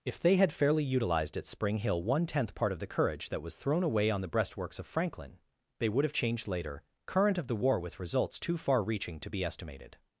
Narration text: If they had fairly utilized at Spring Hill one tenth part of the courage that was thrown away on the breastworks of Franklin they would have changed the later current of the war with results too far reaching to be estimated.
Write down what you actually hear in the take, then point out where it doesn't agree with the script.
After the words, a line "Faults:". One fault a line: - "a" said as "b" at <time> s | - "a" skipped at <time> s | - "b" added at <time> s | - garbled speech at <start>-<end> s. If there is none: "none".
If they had fairly utilized at Spring Hill one tenth part of the courage that was thrown away on the breastworks of Franklin they would have changed later current of the war with results too far reaching to be estimated.
Faults:
- "the" skipped at 6.5 s